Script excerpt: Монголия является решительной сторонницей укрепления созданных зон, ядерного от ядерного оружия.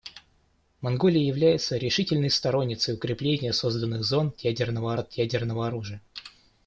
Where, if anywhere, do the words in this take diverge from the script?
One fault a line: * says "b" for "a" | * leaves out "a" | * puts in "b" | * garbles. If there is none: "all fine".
all fine